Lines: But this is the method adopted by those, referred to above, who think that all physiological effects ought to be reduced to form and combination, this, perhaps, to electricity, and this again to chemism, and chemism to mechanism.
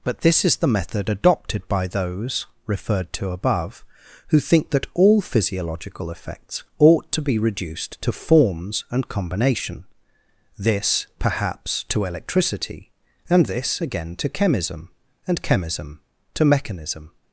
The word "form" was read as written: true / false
false